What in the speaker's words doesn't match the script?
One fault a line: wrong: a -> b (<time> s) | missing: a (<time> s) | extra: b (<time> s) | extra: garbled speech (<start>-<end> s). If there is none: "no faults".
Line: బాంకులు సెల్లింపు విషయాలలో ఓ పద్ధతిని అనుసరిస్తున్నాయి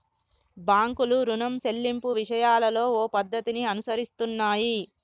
extra: రుణం (1.2 s)